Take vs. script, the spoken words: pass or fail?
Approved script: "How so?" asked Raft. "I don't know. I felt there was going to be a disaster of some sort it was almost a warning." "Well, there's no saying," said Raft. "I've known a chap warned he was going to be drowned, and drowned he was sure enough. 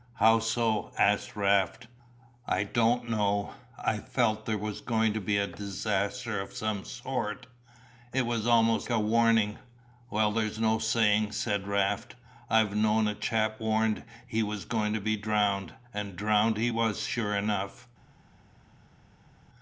pass